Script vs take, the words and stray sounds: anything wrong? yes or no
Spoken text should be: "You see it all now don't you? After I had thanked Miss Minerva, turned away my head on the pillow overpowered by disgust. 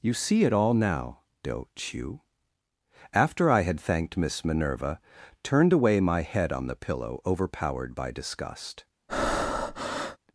yes